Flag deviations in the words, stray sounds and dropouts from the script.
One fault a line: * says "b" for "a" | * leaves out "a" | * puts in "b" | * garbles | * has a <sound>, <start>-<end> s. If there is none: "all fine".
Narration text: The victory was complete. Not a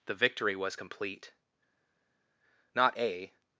all fine